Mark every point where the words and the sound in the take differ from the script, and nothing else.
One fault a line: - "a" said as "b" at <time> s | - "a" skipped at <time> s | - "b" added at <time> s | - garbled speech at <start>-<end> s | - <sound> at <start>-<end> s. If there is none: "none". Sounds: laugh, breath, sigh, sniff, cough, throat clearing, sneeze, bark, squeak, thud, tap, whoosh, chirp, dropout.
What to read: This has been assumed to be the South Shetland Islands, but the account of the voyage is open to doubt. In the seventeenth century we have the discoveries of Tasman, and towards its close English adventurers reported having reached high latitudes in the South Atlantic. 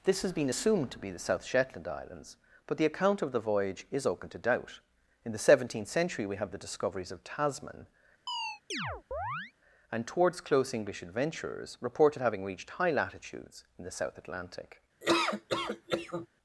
- chirp at 8.3-9.5 s
- "its" skipped at 10.4 s
- laugh at 15.0-16.3 s